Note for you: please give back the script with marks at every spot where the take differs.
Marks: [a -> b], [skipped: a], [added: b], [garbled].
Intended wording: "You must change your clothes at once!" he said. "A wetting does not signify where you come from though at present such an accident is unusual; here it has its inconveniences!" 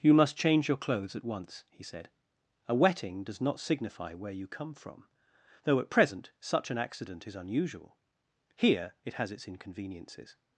"You must change your clothes at once!" he said. "A wetting does not signify where you come from though at present such an accident is unusual; here it has its inconveniences!"